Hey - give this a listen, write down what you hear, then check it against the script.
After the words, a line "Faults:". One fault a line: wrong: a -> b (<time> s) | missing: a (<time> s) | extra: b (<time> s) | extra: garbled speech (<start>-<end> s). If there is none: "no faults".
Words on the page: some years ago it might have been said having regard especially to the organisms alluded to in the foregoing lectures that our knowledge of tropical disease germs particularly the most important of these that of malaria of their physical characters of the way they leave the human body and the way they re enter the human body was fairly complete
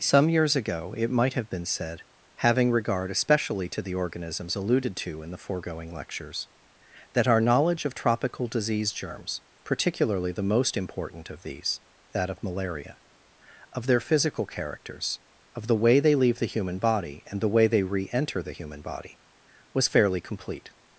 some years ago it might have been said having regard especially to the organisms alluded to in the foregoing lectures that our knowledge of tropical disease germs particularly the most important of these that of malaria of their physical characters of the way they leave the human body and the way they re enter the human body was fairly complete
Faults:
no faults